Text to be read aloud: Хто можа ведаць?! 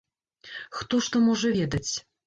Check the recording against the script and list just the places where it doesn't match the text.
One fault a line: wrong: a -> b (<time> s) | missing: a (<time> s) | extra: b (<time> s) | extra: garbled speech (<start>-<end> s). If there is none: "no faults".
extra: што (1.1 s)